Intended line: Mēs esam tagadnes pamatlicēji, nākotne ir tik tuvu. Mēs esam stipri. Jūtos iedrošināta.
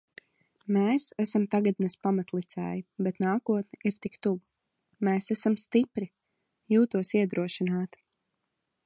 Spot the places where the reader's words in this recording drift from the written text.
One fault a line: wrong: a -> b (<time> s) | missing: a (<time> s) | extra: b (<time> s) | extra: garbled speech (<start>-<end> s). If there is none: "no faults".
extra: bet (3.1 s)